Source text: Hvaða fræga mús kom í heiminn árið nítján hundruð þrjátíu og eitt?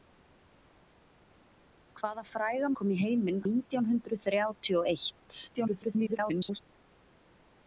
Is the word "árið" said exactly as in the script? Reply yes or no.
no